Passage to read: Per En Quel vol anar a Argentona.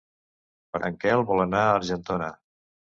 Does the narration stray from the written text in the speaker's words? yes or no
no